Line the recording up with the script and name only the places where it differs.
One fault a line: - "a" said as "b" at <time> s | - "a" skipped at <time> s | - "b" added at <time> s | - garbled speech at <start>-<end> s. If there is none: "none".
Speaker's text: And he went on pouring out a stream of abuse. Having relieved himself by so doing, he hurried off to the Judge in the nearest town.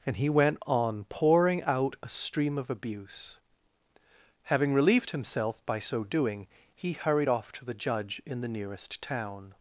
none